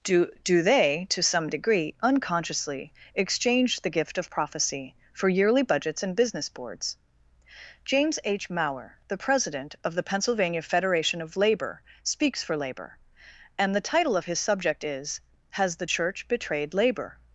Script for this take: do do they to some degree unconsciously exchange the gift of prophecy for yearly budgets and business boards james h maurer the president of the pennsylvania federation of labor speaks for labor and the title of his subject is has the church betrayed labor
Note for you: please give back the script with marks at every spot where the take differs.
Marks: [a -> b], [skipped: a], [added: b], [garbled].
do do they to some degree unconsciously exchange the gift of prophecy for yearly budgets and business boards james h maurer the president of the pennsylvania federation of labor speaks for labor and the title of his subject is has the church betrayed labor